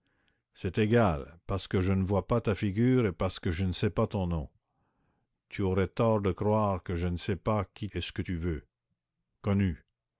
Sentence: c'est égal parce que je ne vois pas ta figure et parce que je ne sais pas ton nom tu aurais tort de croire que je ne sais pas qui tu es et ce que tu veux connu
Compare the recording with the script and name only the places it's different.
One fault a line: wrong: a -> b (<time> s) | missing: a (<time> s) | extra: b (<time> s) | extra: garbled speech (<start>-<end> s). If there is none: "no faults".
missing: tu es (7.9 s)